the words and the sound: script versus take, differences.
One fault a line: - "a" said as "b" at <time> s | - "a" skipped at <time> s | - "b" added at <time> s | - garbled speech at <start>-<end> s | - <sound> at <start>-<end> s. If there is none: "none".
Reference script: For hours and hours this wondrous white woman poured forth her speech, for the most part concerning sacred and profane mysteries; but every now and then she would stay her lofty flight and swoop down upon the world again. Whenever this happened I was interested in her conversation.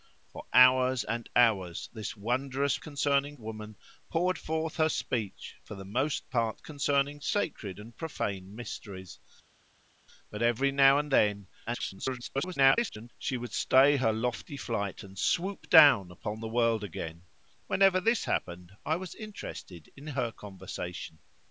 - "white" said as "concerning" at 2.8 s
- garbled speech at 11.7-13.1 s